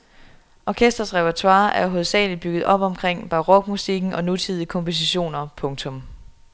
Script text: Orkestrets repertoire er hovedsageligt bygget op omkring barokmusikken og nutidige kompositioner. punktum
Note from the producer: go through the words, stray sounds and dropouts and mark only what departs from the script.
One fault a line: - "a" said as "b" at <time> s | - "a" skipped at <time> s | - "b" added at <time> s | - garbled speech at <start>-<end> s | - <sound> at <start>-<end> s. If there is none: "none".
none